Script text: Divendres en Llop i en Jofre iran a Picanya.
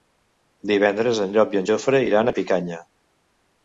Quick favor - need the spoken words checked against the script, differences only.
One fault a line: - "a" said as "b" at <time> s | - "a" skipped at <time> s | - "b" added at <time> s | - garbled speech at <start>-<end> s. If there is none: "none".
none